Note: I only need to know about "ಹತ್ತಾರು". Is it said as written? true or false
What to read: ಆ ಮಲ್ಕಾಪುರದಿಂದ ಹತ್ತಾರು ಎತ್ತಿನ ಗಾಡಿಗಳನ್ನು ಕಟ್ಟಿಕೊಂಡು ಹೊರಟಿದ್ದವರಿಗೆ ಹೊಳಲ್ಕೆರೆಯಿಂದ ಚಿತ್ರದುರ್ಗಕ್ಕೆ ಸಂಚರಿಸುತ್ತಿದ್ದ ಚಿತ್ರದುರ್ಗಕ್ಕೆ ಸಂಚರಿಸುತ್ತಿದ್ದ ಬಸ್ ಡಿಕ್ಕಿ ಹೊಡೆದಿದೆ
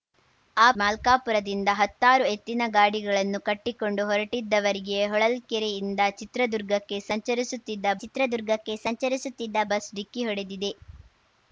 true